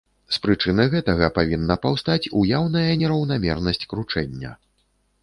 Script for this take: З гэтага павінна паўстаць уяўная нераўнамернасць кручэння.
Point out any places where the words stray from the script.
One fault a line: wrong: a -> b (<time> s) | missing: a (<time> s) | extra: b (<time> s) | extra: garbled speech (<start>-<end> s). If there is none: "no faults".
extra: прычыны (0.4 s)